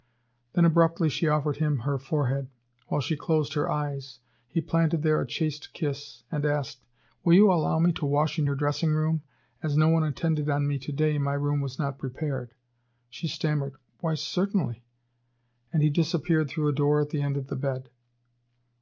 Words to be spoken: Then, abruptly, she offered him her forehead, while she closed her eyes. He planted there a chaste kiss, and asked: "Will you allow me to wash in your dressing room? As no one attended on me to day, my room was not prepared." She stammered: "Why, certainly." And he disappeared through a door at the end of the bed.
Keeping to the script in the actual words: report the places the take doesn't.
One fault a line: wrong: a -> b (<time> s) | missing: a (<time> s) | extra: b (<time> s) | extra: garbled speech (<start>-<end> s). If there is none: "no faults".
no faults